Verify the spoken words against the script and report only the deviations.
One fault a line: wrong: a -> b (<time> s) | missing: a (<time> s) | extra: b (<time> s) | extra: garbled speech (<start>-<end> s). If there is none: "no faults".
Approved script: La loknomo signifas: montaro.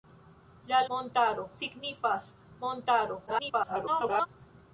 wrong: loknomo -> montaro (0.9 s)
extra: garbled speech (3.3-4.3 s)